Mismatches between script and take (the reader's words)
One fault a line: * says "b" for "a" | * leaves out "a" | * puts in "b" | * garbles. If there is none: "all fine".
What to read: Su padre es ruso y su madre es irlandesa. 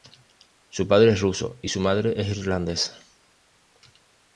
all fine